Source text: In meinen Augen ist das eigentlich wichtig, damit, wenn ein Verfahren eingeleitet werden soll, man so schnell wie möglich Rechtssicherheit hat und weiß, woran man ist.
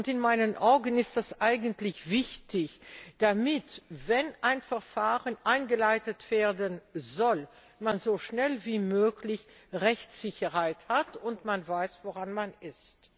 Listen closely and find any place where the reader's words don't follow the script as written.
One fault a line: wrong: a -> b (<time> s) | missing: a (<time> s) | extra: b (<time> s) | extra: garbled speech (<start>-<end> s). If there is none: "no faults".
no faults